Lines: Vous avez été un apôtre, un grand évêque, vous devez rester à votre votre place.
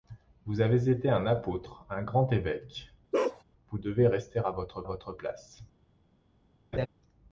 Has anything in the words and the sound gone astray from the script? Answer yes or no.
yes